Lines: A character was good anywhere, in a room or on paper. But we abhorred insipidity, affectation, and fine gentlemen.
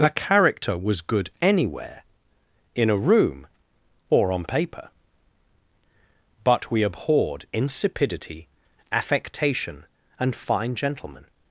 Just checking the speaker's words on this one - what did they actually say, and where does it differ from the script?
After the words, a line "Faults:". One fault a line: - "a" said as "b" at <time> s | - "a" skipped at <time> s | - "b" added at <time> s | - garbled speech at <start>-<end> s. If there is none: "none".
A character was good anywhere, in a room or on paper. But we abhorred insipidity, affectation, and fine gentlemen.
Faults:
none